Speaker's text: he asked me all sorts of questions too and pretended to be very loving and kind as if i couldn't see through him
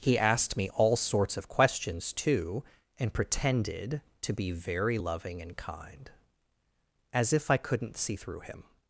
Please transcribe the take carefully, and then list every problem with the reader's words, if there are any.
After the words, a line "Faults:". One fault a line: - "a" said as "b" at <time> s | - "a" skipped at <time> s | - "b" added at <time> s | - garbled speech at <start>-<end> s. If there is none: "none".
he asked me all sorts of questions too and pretended to be very loving and kind as if i couldn't see through him
Faults:
none